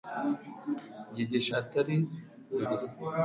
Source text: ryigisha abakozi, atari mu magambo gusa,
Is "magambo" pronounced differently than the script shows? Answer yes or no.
yes